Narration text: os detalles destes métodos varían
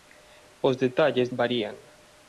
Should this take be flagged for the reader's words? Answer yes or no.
yes